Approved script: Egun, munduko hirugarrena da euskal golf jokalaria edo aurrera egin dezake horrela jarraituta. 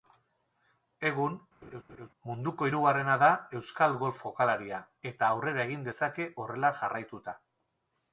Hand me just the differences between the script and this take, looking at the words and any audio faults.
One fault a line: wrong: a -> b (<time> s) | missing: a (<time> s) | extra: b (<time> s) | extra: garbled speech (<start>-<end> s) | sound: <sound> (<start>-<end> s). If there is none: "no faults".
sound: laugh (1.6-2.1 s)
wrong: edo -> eta (5.1 s)